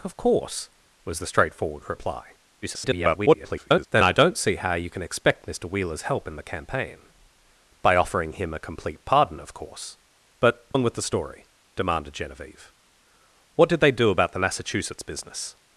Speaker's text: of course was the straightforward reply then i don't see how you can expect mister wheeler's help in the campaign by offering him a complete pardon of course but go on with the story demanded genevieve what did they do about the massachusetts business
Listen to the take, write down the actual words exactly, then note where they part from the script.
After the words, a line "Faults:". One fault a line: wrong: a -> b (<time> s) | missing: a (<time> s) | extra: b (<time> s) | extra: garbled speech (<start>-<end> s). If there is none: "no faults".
of course was the straightforward reply [garbled] then i don't see how you can expect mister wheeler's help in the campaign by offering him a complete pardon of course but on with the story demanded genevieve what did they do about the massachusetts business
Faults:
extra: garbled speech (2.6-3.9 s)
missing: go (10.7 s)